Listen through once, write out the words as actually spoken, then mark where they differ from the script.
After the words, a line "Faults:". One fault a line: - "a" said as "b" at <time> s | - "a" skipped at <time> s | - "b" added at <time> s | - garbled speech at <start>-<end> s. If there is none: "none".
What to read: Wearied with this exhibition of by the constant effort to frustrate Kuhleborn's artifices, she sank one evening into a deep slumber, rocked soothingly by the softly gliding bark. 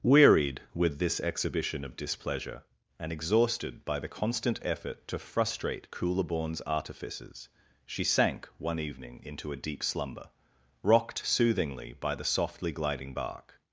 Wearied with this exhibition of displeasure, and exhausted by the constant effort to frustrate Kuhleborn's artifices, she sank one evening into a deep slumber, rocked soothingly by the softly gliding bark.
Faults:
- "displeasure and exhausted" added at 1.9 s